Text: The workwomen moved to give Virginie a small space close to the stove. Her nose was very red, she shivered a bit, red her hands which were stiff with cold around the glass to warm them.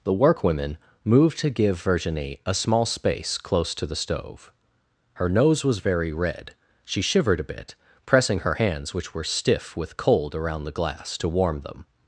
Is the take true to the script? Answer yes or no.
no